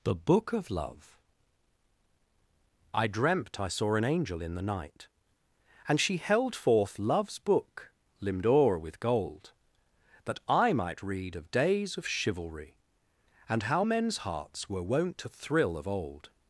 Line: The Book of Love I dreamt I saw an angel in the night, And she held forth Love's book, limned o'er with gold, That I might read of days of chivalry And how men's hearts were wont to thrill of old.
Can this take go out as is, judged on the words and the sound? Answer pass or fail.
pass